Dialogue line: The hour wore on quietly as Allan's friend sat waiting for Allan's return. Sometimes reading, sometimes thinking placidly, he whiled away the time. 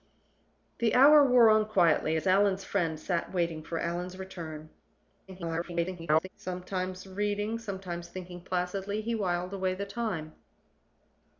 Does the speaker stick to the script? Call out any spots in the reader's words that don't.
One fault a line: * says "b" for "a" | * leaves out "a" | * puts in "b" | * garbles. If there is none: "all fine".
* garbles